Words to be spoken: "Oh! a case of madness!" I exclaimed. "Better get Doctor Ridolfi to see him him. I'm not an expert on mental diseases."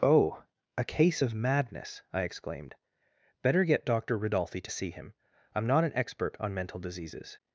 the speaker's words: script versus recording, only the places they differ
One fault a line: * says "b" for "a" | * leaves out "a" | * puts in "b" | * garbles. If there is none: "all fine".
* leaves out "him"